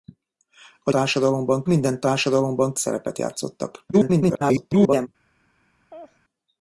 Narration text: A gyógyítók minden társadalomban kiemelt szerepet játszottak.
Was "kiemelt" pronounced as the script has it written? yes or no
no